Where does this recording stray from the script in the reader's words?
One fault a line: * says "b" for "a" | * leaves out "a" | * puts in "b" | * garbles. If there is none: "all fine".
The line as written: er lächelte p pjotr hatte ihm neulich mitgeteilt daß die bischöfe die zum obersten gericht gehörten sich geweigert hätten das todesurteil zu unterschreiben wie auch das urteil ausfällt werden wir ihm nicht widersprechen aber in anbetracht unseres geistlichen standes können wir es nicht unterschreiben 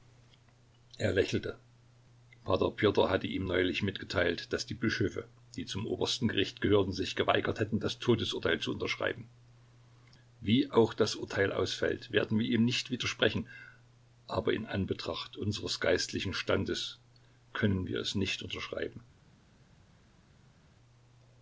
all fine